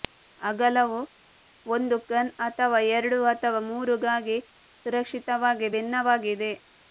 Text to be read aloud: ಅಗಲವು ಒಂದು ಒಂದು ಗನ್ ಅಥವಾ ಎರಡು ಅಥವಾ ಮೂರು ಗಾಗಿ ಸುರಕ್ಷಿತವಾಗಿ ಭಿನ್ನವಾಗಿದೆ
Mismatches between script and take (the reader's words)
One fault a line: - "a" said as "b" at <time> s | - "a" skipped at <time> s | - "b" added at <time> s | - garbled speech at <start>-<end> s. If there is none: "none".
- "ಒಂದು" skipped at 2.0 s